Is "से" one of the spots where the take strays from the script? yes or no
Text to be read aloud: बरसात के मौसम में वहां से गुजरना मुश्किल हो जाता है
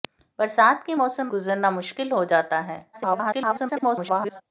yes